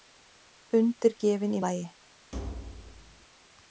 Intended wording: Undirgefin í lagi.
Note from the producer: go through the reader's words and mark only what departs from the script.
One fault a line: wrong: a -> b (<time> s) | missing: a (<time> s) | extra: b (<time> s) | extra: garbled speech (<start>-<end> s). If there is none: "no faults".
no faults